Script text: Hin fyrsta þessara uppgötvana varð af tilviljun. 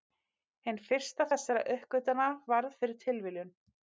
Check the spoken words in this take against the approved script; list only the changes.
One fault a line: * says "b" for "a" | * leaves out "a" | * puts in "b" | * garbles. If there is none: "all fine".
* says "fyrir" for "af"